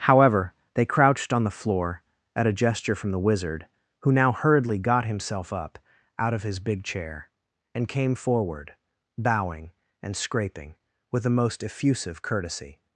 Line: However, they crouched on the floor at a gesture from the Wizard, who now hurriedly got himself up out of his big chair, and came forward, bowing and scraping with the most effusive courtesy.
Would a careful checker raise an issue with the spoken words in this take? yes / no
no